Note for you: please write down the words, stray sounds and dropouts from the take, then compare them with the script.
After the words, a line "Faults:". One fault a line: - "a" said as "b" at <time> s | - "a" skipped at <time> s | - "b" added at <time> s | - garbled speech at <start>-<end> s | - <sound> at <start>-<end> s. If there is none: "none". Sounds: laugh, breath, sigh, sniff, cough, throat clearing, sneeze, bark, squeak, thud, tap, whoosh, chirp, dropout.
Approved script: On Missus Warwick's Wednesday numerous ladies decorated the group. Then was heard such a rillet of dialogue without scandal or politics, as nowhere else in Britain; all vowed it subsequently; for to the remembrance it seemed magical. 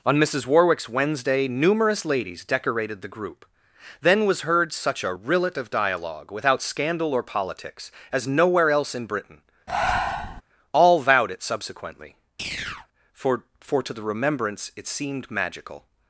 On Missus Warwick's Wednesday numerous ladies decorated the group. Then was heard such a rillet of dialogue without scandal or politics, as nowhere else in Britain; all vowed it subsequently; for for to the remembrance it seemed magical.
Faults:
- breath at 9.7-10.4 s
- chirp at 12.4-12.9 s
- "for" added at 13.6 s